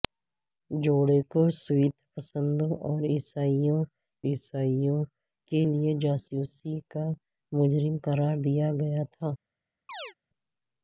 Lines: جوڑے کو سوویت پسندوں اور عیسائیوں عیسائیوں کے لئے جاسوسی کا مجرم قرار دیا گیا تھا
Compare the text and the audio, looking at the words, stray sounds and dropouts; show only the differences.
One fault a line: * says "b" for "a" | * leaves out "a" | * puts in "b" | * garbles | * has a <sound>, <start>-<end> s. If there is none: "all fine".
* has a chirp, 9.9-10.1 s